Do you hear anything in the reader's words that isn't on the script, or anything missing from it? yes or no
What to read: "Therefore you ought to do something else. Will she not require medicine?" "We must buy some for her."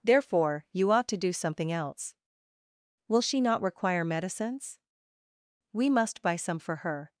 yes